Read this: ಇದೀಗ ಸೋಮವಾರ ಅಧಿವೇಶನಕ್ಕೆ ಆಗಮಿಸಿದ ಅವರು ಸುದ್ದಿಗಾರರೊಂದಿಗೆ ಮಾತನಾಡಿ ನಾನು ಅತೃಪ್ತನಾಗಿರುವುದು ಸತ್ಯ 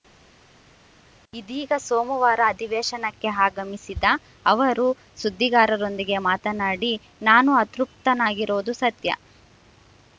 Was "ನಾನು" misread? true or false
false